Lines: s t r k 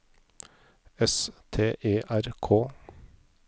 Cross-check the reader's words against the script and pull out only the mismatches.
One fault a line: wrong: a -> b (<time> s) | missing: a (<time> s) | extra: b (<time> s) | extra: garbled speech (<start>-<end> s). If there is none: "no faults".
extra: e (1.8 s)